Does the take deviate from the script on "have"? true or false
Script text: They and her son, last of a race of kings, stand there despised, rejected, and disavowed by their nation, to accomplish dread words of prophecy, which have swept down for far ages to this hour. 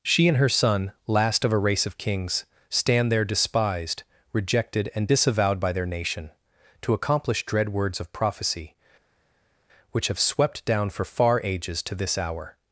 false